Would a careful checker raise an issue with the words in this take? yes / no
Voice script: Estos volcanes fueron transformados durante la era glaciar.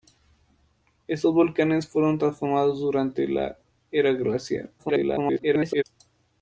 yes